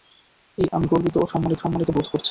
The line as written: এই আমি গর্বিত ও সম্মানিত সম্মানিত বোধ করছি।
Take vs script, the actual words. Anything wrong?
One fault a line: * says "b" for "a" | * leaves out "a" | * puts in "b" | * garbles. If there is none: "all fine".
all fine